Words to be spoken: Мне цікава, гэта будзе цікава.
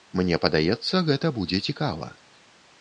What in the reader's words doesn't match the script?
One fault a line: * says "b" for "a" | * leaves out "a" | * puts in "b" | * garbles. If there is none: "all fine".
* says "падаецца" for "цікава"